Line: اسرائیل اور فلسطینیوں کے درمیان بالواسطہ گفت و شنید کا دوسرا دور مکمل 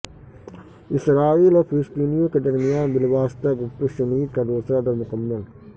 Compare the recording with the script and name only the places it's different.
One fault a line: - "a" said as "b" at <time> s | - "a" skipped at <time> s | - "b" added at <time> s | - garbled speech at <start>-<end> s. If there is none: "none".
none